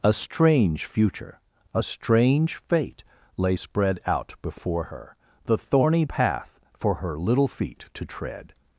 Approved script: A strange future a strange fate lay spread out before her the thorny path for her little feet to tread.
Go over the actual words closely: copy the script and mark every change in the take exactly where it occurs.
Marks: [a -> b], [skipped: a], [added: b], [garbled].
A strange future a strange fate lay spread out before her the thorny path for her little feet to tread.